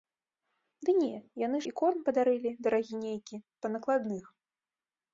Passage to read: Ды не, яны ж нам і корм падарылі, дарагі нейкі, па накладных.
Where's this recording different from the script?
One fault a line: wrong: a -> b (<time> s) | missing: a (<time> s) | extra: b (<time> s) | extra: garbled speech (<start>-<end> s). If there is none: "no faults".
missing: ж нам (1.6 s)